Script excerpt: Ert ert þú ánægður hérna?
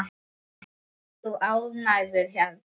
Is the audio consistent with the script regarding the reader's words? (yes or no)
yes